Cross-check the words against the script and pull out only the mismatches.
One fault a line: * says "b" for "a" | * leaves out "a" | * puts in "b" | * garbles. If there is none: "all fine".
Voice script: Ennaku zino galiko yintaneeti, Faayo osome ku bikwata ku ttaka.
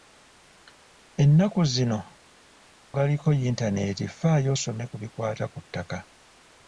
all fine